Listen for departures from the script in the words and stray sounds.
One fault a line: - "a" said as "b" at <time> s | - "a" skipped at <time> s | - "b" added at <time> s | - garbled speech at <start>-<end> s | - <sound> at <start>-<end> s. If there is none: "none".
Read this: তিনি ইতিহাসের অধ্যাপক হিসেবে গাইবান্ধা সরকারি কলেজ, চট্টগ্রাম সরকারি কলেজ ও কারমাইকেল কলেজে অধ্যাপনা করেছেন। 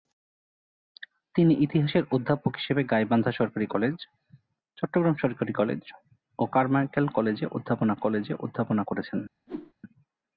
- "কলেজে অধ্যাপনা" added at 7.9 s
- whoosh at 9.5-9.7 s